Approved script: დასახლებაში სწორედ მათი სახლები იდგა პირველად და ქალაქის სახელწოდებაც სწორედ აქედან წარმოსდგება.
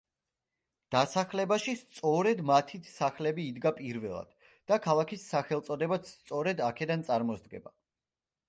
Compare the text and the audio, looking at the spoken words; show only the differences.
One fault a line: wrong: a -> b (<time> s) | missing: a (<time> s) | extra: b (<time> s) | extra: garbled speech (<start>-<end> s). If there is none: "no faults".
no faults